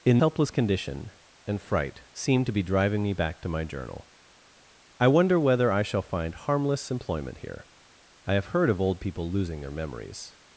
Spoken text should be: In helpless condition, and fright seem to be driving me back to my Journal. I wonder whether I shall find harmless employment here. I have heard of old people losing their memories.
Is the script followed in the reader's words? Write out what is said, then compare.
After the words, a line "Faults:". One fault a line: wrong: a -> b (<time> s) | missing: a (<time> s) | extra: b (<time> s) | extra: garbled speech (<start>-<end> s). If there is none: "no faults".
In helpless condition, and fright seem to be driving me back to my Journal. I wonder whether I shall find harmless employment here. I have heard of old people losing their memories.
Faults:
no faults